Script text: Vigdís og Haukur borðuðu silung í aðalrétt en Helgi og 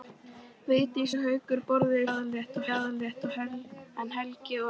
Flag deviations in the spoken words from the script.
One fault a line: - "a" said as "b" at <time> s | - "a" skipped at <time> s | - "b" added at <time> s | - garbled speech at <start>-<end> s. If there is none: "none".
- "silung" said as "aðalrétt" at 2.1 s